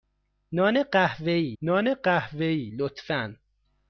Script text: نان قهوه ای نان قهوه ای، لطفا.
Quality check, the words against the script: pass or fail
pass